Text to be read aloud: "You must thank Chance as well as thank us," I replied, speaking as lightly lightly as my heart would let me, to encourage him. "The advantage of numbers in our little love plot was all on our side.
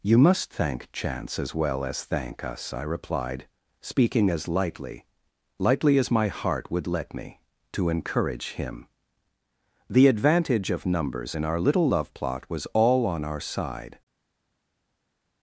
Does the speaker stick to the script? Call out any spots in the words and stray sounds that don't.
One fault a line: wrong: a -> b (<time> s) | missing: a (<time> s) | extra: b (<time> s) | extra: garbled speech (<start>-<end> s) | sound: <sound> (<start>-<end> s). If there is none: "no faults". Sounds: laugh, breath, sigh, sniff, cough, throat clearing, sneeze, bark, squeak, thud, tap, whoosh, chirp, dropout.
no faults